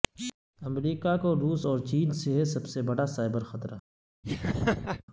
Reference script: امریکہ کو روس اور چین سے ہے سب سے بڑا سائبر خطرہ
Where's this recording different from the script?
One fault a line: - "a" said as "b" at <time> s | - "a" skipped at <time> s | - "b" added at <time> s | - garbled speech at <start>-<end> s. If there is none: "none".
none